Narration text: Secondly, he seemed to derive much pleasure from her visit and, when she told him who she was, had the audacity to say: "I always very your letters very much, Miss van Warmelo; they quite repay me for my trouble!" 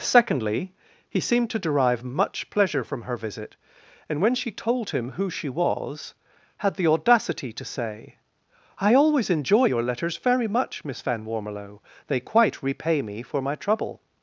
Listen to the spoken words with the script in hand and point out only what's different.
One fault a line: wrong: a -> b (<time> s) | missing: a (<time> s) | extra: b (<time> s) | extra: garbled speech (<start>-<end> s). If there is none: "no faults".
wrong: very -> enjoy (9.3 s)